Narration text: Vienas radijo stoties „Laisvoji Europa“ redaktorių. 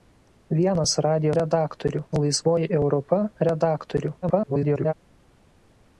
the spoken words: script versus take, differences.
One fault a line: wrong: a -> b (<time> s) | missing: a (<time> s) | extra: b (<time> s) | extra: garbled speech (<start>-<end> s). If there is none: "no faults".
wrong: stoties -> redaktorių (1.4 s)
extra: garbled speech (4.2-4.9 s)